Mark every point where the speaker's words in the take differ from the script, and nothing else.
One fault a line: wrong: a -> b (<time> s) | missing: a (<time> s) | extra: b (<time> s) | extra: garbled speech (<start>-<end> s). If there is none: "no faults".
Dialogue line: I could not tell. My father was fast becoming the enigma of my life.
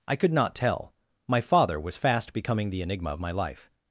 no faults